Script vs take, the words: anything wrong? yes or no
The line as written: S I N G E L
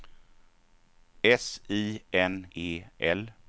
yes